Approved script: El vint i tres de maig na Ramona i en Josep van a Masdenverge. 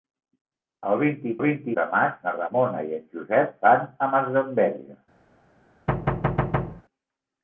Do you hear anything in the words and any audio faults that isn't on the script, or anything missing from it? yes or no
yes